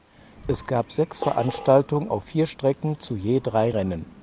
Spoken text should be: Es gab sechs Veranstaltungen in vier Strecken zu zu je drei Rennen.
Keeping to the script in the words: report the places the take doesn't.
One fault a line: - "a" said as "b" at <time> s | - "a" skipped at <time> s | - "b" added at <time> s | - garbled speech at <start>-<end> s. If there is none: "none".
- "in" said as "auf" at 2.1 s
- "zu" skipped at 3.2 s